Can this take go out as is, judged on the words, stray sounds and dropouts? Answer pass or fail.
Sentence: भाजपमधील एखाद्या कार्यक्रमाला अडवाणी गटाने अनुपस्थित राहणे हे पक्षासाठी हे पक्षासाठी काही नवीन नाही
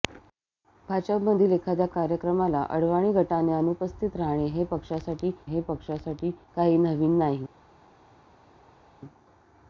pass